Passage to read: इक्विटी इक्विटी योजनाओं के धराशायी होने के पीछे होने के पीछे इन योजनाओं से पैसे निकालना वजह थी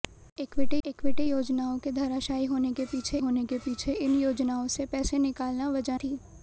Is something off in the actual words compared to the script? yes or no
no